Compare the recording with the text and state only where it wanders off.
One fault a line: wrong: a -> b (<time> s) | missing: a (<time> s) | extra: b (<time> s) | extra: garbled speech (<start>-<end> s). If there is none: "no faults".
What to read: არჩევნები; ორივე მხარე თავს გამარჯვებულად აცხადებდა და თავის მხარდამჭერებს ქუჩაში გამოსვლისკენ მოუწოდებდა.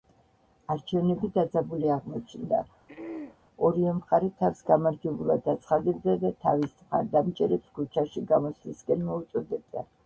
extra: დაძაბული აღმოჩნდა (1.4 s)